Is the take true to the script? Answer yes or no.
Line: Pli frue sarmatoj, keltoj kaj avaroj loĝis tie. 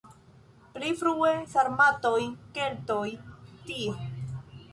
no